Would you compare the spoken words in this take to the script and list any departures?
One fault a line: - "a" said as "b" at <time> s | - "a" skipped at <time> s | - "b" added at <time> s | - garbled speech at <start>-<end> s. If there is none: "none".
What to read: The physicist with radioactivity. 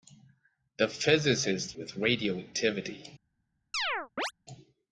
none